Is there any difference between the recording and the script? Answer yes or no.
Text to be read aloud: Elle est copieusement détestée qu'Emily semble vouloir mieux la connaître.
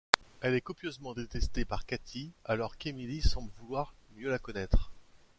yes